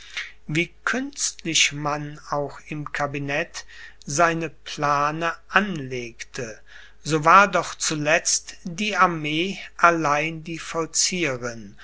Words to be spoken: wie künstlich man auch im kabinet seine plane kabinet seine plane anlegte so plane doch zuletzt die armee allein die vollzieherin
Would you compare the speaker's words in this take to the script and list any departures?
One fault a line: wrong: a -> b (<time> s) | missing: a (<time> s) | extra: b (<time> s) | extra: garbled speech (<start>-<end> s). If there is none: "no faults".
missing: kabinet seine plane (5.3 s)
wrong: plane -> war (7.2 s)